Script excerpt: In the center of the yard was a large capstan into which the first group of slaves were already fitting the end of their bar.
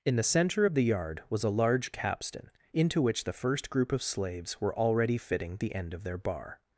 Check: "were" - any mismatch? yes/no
no